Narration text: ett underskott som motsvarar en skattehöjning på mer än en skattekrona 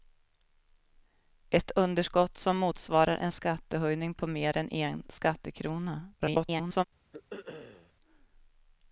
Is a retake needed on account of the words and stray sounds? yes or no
yes